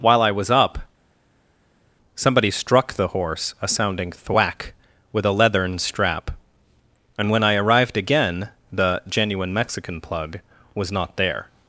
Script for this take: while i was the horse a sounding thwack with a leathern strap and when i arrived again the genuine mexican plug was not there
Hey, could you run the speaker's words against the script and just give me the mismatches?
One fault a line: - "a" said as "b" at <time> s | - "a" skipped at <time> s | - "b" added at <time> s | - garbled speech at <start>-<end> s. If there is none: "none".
- "up somebody struck" added at 0.5 s